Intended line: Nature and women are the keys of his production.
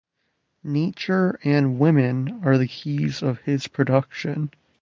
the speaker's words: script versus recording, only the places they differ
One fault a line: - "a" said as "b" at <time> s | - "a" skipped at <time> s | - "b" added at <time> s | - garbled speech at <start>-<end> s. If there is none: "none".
none